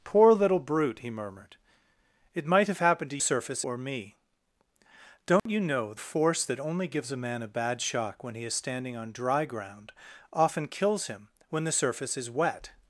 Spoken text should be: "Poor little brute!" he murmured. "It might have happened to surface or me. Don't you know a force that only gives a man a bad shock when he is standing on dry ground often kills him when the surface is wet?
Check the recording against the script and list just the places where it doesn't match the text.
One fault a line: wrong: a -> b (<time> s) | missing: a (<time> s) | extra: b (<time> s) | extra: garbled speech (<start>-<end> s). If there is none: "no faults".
no faults